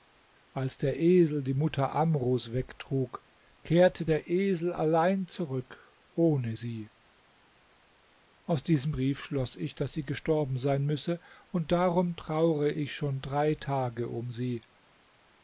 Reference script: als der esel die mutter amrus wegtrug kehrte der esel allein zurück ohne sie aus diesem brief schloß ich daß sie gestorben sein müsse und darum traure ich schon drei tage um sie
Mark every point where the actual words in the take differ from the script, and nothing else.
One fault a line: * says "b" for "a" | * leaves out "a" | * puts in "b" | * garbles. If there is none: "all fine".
all fine